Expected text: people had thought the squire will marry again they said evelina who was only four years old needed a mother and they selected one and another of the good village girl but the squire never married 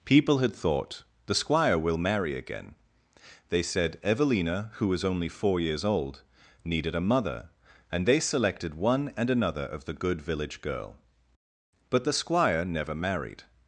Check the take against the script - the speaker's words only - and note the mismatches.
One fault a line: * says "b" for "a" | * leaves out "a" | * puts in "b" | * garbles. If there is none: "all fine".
all fine